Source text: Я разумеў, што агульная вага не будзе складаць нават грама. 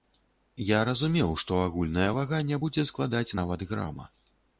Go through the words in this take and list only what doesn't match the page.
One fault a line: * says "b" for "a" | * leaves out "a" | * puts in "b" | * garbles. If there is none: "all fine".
all fine